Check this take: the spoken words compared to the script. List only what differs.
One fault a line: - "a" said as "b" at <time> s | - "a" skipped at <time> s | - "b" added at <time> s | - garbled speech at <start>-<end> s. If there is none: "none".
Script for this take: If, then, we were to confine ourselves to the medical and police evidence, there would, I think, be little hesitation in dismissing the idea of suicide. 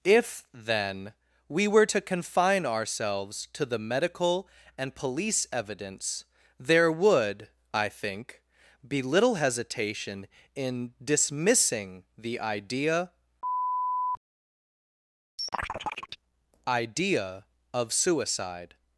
- "idea" added at 16.7 s